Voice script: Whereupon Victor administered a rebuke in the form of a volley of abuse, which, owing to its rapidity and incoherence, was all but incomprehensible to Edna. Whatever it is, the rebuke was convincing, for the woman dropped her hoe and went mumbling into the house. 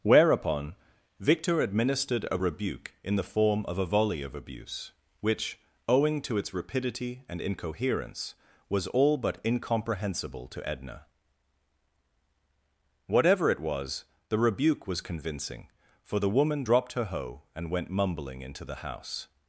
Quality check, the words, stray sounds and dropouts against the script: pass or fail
fail